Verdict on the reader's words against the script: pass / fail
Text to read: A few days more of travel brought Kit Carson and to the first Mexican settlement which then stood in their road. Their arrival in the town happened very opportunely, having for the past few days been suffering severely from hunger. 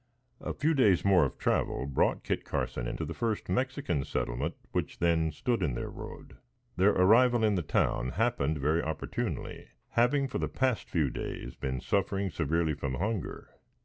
pass